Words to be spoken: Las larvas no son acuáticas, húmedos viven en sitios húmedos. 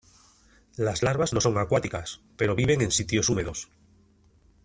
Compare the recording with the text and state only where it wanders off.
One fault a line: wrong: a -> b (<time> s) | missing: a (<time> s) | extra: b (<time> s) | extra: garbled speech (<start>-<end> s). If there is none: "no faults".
wrong: húmedos -> pero (2.4 s)